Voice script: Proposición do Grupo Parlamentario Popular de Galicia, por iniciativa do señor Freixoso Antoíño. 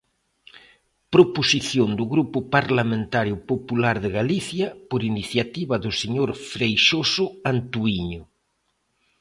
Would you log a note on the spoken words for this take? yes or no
no